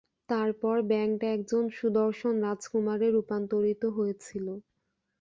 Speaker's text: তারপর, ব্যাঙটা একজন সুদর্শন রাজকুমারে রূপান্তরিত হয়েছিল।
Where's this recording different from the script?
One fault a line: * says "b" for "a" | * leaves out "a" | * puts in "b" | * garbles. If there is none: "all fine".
all fine